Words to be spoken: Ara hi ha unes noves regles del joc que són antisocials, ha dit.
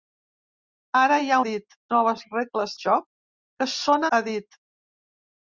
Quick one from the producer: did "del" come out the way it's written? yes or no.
no